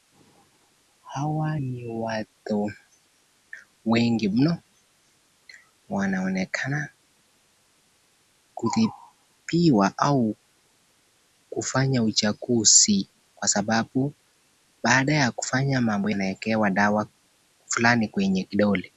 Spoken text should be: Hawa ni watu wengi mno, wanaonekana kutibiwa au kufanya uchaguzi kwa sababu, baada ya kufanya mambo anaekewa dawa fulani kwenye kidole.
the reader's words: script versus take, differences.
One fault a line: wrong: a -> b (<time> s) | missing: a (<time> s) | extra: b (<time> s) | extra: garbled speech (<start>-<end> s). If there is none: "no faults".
no faults